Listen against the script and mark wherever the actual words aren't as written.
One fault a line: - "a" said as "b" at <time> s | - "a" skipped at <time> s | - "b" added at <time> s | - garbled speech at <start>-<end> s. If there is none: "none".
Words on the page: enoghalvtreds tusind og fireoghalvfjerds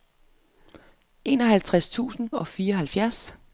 none